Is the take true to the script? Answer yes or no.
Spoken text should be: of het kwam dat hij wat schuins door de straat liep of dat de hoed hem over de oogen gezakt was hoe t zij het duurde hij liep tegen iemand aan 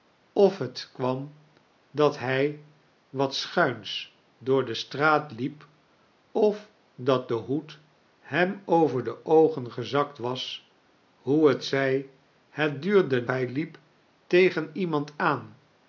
yes